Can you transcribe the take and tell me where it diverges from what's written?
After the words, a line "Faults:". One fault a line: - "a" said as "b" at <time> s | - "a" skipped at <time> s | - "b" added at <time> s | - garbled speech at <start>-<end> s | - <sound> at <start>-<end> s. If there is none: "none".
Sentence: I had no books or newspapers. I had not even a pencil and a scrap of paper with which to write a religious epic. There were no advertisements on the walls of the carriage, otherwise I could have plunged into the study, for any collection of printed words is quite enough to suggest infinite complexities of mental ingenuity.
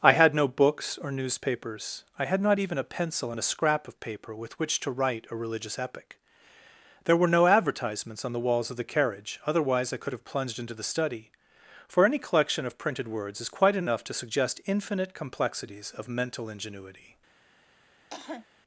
I had no books or newspapers. I had not even a pencil and a scrap of paper with which to write a religious epic. There were no advertisements on the walls of the carriage, otherwise I could have plunged into the study, for any collection of printed words is quite enough to suggest infinite complexities of mental ingenuity.
Faults:
- cough at 18.1-18.5 s